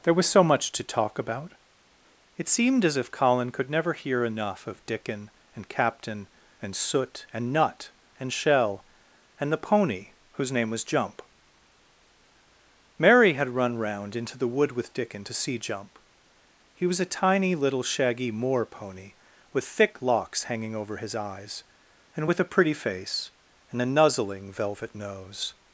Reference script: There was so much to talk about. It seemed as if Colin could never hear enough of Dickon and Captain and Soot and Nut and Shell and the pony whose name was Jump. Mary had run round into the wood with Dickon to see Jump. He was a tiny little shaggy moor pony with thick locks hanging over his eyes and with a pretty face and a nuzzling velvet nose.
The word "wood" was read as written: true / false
true